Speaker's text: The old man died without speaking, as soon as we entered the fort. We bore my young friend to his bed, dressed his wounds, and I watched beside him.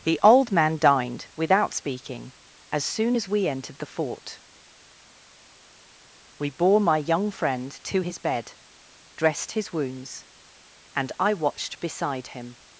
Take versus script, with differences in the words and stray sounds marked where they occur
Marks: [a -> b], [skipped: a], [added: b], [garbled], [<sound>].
The old man [died -> dined] without speaking, as soon as we entered the fort. We bore my young friend to his bed, dressed his wounds, and I watched beside him.